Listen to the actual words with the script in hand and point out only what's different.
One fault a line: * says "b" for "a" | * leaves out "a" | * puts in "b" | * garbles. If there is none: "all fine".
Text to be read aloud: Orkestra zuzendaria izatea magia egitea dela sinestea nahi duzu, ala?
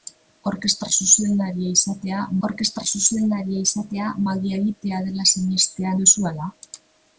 * puts in "orkestra zuzendaria izatea"
* leaves out "nahi"